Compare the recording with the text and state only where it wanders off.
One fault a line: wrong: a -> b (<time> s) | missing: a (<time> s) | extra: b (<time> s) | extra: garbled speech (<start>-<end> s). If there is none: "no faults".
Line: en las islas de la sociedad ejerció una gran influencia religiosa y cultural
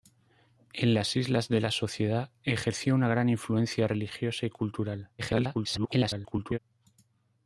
extra: garbled speech (5.2-6.6 s)